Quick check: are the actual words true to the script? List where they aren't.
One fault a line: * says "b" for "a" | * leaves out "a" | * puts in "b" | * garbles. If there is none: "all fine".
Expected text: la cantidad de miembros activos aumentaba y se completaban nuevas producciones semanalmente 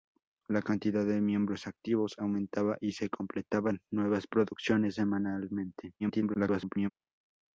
* garbles